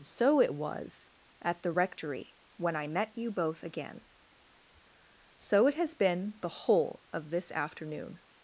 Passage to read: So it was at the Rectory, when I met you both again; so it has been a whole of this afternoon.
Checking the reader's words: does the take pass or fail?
fail